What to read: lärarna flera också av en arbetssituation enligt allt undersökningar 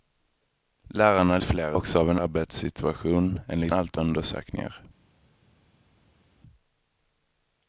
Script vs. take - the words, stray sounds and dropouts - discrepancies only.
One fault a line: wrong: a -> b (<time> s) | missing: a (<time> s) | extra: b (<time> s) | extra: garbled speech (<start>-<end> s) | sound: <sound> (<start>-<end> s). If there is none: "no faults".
no faults